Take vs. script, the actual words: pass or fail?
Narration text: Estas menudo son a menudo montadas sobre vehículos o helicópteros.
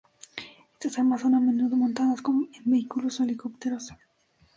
fail